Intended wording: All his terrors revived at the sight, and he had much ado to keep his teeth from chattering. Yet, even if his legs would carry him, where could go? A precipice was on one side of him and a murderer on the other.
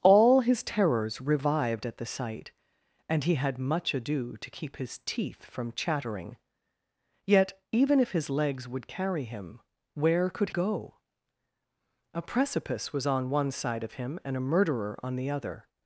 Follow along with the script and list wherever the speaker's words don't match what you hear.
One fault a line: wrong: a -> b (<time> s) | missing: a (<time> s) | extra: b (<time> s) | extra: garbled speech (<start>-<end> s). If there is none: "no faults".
no faults